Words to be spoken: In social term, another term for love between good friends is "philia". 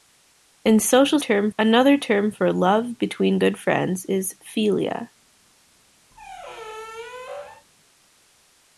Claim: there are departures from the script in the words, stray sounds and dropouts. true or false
true